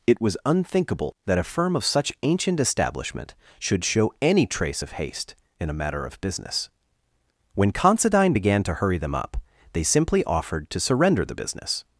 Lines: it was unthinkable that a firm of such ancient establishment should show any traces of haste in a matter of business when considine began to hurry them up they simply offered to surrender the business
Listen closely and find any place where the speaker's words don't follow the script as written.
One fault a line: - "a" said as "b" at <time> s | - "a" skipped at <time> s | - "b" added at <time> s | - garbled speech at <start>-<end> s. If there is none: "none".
- "traces" said as "trace" at 4.5 s